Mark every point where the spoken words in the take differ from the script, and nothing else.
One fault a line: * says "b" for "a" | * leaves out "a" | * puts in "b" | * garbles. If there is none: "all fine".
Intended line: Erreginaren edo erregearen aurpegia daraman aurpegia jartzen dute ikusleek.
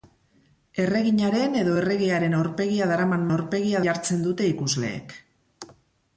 all fine